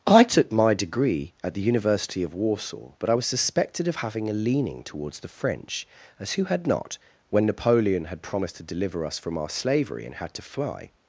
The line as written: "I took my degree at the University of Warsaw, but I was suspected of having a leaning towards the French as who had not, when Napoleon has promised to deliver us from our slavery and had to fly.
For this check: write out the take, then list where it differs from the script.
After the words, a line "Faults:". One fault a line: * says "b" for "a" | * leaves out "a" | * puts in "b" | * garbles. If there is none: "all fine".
"I took my degree at the University of Warsaw, but I was suspected of having a leaning towards the French as who had not, when Napoleon had promised to deliver us from our slavery and had to fly.
Faults:
* says "had" for "has"